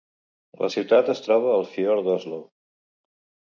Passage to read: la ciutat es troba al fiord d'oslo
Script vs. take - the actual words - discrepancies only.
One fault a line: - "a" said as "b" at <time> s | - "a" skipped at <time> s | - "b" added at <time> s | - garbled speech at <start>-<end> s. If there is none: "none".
none